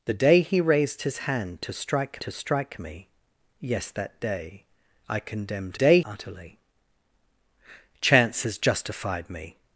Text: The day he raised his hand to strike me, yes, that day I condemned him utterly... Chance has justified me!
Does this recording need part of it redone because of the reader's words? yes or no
yes